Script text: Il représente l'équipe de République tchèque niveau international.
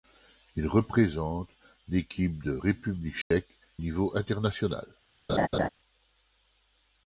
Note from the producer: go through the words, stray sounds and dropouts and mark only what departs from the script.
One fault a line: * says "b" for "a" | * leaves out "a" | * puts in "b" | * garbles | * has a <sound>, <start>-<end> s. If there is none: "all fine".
* has a dropout, 3.2-3.3 s
* has a laugh, 5.3-5.7 s